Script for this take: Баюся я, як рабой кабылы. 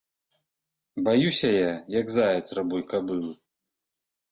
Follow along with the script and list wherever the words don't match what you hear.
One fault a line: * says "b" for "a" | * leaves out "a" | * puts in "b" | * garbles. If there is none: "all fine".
* puts in "заяц"